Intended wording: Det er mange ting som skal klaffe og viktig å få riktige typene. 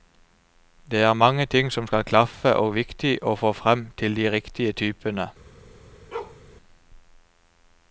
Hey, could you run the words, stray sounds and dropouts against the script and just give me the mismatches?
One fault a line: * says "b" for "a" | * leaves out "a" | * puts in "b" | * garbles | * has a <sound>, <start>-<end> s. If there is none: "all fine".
* puts in "frem til de"
* has a bark, 6.1-6.4 s